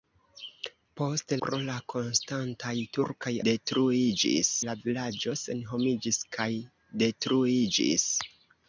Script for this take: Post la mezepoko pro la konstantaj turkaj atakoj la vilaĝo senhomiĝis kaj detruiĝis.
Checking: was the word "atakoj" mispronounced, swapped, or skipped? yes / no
yes